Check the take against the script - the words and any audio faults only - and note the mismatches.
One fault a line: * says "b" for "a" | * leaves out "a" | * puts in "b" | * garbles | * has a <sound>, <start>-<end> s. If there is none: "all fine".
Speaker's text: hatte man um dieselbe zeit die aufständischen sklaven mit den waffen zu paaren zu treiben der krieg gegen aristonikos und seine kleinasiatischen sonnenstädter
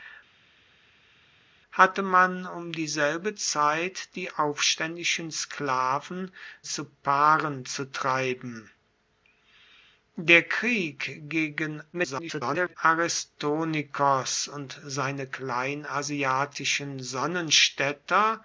* leaves out "mit den waffen"
* garbles